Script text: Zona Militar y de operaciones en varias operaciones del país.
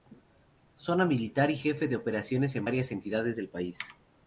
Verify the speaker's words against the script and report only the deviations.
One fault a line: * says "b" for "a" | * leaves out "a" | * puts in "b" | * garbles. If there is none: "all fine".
* puts in "jefe"
* says "entidades" for "operaciones"